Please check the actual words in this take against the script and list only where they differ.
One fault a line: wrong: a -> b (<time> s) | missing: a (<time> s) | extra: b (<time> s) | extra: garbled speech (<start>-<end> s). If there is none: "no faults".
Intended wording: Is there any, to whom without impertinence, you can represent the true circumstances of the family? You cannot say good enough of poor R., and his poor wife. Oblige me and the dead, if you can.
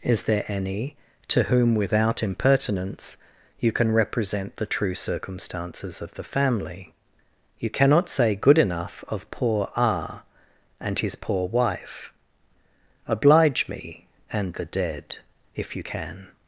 no faults